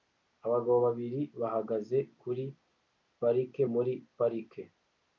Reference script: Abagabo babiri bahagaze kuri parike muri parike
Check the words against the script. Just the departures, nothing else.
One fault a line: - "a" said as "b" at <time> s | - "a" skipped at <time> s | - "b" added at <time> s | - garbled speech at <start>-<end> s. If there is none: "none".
none